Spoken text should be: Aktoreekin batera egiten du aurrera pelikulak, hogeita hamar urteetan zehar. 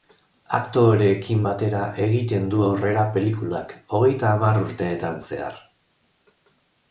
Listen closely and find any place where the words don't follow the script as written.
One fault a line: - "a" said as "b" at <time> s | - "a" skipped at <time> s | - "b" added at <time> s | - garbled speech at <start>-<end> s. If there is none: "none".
none